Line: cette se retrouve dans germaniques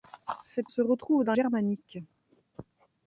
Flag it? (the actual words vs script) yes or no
no